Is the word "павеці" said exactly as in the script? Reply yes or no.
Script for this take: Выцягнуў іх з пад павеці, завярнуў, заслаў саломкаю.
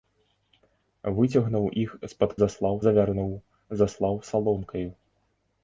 no